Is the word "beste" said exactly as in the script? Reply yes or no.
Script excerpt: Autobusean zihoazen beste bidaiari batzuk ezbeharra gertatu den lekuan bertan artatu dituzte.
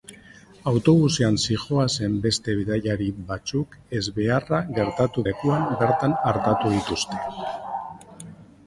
yes